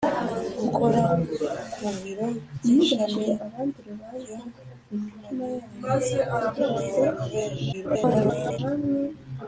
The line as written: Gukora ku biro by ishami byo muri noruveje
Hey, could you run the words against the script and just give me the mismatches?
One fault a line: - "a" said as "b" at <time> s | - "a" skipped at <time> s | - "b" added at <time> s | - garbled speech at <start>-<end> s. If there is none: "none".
- garbled speech at 7.7-8.6 s